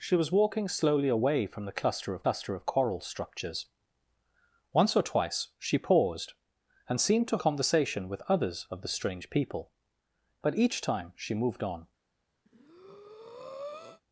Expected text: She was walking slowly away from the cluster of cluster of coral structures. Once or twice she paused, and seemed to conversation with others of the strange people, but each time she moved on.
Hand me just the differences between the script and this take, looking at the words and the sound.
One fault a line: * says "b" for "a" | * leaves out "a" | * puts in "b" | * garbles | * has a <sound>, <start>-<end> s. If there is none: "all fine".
* has a breath, 12.5-14.0 s